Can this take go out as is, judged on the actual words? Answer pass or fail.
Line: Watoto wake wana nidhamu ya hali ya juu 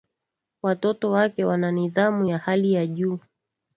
pass